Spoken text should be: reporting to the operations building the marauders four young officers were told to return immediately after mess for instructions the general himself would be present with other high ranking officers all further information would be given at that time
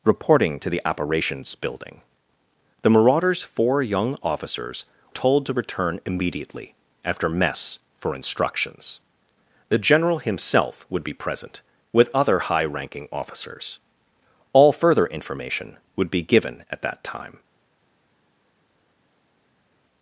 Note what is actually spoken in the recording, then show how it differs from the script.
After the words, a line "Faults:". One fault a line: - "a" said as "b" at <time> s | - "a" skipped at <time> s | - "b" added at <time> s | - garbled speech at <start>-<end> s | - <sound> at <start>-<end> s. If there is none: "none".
reporting to the operations building the marauders four young officers told to return immediately after mess for instructions the general himself would be present with other high ranking officers all further information would be given at that time
Faults:
- "were" skipped at 4.8 s